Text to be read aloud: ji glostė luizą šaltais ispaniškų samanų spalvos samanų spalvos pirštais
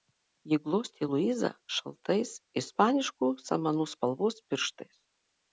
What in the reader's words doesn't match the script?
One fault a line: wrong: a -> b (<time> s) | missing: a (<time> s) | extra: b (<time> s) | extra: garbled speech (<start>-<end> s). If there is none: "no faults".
missing: samanų spalvos (4.4 s)